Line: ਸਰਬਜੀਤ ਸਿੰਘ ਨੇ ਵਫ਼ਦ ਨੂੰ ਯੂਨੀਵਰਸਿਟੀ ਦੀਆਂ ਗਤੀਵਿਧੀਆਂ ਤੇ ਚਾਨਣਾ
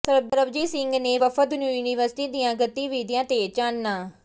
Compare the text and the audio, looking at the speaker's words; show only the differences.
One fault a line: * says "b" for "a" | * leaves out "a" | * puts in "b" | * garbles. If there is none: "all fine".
all fine